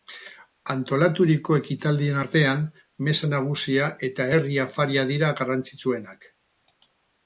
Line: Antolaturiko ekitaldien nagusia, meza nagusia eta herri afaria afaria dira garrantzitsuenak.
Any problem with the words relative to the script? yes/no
yes